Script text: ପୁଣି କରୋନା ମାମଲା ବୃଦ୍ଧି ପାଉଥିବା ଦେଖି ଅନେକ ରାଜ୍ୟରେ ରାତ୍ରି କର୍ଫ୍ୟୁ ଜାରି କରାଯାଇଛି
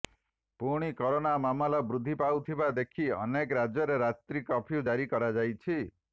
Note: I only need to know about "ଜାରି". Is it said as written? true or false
true